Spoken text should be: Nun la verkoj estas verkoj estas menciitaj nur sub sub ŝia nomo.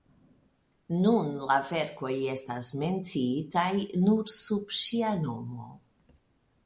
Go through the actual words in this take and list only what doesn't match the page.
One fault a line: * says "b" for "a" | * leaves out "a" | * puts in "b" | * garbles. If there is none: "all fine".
* leaves out "verkoj estas"
* leaves out "sub"